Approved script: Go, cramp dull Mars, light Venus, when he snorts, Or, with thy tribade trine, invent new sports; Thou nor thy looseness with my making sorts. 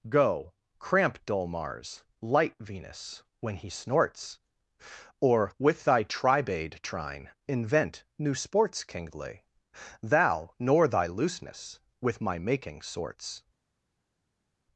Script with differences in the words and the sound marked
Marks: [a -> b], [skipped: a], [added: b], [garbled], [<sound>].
Go, cramp dull Mars, light Venus, when he snorts, Or, with thy tribade trine, invent new sports; [added: kingly] Thou nor thy looseness with my making sorts.